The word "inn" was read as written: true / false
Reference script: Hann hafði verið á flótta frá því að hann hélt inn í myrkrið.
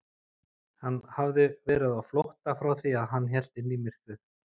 true